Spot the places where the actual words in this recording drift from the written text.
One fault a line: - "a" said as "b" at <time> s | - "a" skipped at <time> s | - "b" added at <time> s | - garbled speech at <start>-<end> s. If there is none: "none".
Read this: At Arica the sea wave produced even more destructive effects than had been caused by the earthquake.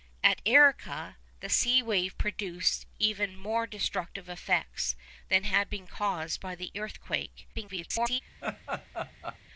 - garbled speech at 7.5-8.2 s